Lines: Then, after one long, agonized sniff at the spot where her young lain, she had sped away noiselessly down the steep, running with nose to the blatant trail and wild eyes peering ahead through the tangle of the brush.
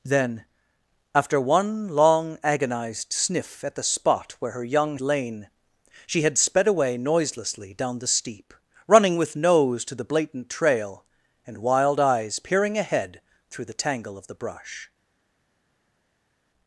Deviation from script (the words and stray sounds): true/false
false